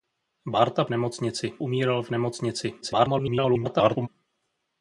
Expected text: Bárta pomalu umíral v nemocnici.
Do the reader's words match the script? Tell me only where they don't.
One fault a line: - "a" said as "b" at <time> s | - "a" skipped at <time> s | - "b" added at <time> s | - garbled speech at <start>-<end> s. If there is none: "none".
- "pomalu" said as "nemocnici" at 0.9 s
- garbled speech at 2.8-4.1 s